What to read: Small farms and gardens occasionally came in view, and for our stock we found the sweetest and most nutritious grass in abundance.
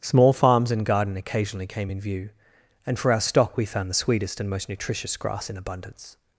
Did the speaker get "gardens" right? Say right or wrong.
wrong